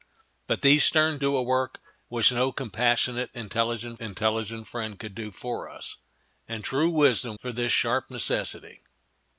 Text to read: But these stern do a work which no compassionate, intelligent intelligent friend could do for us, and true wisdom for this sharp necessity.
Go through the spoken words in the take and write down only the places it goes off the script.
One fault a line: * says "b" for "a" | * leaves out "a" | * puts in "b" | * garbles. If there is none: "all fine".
all fine